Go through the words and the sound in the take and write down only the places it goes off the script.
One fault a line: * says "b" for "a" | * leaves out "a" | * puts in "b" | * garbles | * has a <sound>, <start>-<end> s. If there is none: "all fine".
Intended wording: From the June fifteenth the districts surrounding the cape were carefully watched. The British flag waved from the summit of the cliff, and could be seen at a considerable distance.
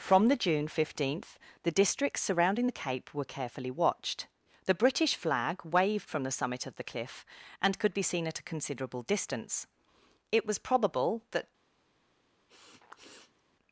* puts in "It was probable that"
* has a sniff, 12.5-13.4 s